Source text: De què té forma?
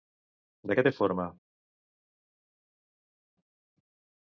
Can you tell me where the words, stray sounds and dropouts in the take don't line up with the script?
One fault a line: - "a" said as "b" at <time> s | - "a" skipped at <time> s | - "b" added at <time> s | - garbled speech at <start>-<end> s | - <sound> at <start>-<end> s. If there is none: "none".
none